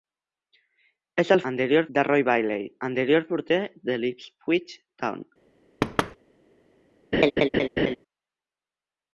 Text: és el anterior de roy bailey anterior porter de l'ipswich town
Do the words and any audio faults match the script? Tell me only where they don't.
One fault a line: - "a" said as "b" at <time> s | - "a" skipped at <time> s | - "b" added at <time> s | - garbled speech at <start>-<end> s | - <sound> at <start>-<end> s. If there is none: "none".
- thud at 5.8-6.2 s
- laugh at 7.1-8.0 s